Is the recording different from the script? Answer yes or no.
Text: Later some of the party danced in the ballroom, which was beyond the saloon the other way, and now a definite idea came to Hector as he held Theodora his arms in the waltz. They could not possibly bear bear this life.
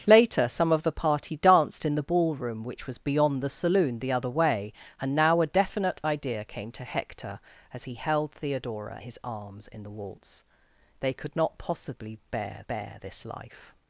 no